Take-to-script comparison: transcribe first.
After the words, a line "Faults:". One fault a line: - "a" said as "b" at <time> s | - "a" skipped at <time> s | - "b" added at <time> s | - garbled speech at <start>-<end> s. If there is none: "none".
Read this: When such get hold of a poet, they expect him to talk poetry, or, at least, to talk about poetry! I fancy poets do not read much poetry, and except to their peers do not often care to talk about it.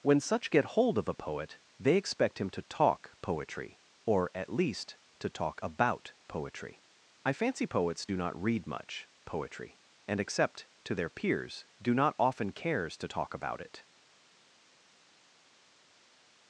When such get hold of a poet, they expect him to talk poetry, or, at least, to talk about poetry! I fancy poets do not read much poetry, and except to their peers do not often cares to talk about it.
Faults:
- "care" said as "cares" at 12.5 s